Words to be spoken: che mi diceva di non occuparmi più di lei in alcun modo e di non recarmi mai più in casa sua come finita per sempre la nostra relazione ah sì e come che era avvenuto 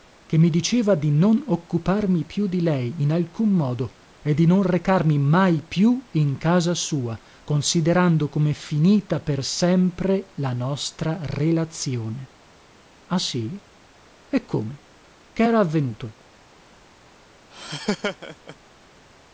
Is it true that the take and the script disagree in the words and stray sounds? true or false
true